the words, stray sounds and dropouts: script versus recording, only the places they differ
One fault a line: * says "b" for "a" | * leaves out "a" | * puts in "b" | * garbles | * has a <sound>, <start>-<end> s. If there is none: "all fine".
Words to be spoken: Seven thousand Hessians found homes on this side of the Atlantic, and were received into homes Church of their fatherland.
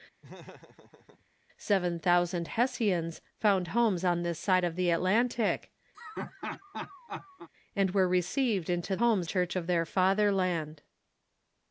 * has a laugh, 0.2-1.3 s
* has a laugh, 5.9-7.5 s